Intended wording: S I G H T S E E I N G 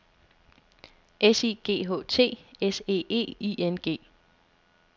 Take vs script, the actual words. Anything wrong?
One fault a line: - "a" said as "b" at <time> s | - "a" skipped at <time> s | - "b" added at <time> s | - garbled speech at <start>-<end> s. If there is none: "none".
none